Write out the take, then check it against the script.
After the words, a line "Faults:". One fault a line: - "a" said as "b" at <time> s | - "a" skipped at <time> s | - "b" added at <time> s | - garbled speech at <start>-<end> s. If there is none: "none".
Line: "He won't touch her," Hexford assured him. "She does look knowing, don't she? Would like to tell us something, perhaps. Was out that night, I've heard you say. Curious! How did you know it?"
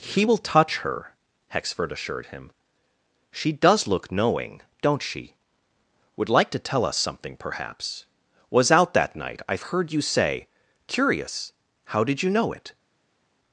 "He will touch her," Hexford assured him. "She does look knowing, don't she? Would like to tell us something, perhaps. Was out that night, I've heard you say. Curious! How did you know it?"
Faults:
- "won't" said as "will" at 0.2 s